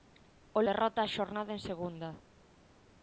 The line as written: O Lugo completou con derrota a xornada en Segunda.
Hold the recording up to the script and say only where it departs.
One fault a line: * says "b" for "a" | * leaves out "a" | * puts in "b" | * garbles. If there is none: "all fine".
* leaves out "Lugo completou con"